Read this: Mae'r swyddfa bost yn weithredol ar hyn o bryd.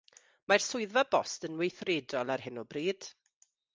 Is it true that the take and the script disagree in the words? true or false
false